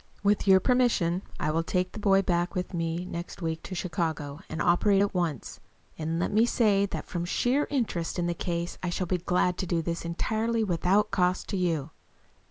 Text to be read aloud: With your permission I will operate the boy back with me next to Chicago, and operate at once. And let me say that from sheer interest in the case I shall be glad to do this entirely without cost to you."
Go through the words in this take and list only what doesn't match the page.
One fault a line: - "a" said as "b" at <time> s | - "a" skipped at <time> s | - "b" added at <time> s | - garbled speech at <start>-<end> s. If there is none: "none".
- "operate" said as "take" at 1.6 s
- "week" added at 3.4 s